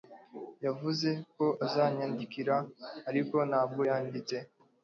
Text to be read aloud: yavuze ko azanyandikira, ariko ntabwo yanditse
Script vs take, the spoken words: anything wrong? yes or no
no